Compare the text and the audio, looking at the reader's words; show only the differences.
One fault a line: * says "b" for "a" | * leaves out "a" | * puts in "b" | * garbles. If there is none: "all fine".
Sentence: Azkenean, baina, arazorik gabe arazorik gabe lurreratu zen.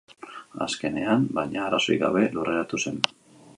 * leaves out "arazorik gabe"